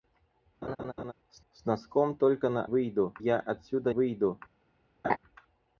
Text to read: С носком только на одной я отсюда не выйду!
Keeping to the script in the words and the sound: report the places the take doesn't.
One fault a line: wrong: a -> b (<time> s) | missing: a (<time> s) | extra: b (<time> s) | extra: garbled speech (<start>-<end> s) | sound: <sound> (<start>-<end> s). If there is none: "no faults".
sound: laugh (0.6-1.1 s)
extra: с (1.5 s)
wrong: одной -> выйду (2.6 s)
missing: не (3.9 s)
sound: laugh (5.0-5.2 s)